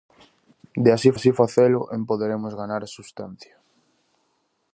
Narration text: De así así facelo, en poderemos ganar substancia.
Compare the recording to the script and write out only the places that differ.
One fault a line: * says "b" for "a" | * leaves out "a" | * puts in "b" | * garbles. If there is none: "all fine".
all fine